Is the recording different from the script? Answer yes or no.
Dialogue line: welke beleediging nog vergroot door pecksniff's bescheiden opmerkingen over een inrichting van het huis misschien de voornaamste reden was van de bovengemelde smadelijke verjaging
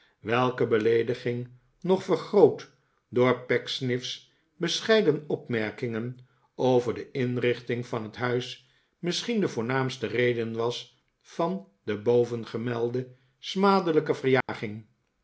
yes